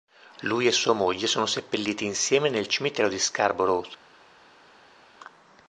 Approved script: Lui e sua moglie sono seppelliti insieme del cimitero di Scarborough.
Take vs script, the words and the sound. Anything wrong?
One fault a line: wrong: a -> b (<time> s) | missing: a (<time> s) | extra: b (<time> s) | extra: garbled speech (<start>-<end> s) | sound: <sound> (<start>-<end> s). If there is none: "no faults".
wrong: del -> nel (2.5 s)